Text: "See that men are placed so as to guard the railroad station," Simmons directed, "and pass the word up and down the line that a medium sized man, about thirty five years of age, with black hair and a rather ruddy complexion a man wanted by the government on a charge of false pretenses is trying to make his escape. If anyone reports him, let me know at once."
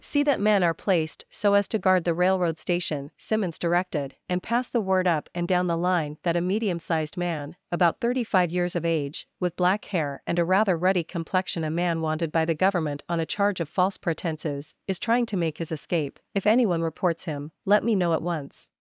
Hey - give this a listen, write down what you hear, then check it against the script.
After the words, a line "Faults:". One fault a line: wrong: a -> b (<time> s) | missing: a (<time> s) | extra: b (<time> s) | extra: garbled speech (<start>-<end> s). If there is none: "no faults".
"See that men are placed so as to guard the railroad station," Simmons directed, "and pass the word up and down the line that a medium sized man, about thirty five years of age, with black hair and a rather ruddy complexion a man wanted by the government on a charge of false pretenses is trying to make his escape. If anyone reports him, let me know at once."
Faults:
no faults